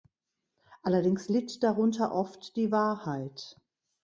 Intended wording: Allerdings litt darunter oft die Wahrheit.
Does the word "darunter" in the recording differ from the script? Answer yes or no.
no